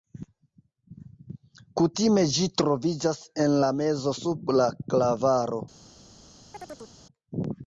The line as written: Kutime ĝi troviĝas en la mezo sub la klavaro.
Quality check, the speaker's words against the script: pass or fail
pass